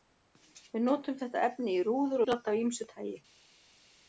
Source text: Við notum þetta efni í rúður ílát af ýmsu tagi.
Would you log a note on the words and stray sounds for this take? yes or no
no